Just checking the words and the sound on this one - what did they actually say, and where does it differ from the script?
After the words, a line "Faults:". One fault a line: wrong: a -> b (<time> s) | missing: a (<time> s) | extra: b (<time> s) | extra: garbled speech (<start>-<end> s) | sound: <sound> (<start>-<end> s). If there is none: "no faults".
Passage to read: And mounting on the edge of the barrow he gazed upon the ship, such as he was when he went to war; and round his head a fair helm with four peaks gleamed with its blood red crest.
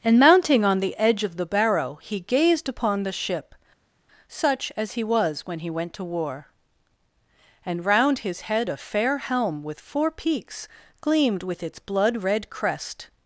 And mounting on the edge of the barrow he gazed upon the ship, such as he was when he went to war; and round his head a fair helm with four peaks gleamed with its blood red crest.
Faults:
no faults